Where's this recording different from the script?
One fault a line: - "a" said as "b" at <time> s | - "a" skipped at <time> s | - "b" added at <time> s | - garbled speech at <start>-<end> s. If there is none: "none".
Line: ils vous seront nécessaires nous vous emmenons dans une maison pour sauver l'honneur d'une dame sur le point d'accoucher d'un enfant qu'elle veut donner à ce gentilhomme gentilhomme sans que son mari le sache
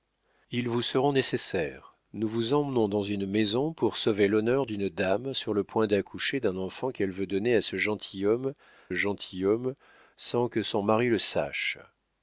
none